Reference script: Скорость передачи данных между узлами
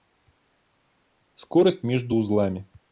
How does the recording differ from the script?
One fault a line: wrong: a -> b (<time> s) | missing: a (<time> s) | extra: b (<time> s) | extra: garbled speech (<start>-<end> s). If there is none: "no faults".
missing: передачи данных (1.8 s)